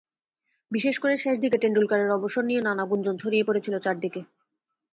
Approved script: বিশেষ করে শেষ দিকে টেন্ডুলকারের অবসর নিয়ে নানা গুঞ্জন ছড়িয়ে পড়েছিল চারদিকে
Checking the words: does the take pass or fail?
pass